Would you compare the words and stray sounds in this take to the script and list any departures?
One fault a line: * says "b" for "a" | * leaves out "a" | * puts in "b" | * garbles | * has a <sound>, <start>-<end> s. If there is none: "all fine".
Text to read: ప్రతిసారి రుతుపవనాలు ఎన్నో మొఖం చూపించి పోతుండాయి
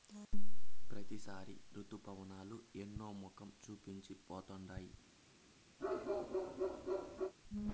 * has a bark, 5.8-7.3 s